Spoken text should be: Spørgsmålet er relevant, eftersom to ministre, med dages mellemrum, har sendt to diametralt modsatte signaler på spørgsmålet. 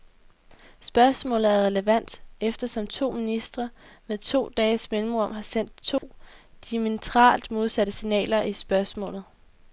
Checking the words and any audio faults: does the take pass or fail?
fail